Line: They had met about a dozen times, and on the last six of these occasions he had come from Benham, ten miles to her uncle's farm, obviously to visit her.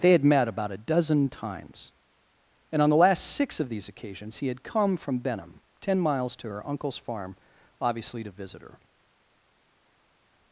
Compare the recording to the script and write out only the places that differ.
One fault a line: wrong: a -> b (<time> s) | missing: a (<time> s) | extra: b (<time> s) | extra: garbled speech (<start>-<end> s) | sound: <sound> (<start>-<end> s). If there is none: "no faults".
no faults